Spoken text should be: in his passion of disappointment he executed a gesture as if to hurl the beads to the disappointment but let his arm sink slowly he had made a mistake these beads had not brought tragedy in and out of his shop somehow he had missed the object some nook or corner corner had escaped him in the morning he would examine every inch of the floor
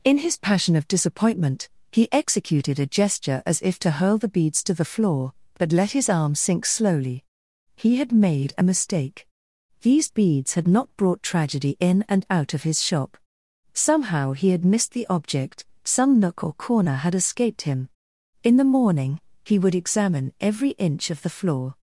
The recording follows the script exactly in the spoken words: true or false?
false